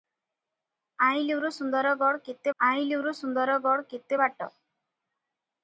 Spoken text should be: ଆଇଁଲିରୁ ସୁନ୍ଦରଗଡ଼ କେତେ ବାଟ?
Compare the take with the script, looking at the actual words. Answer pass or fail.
fail